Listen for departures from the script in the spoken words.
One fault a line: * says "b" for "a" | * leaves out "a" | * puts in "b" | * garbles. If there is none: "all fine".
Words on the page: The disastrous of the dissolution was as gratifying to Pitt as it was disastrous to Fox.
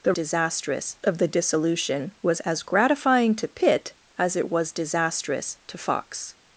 all fine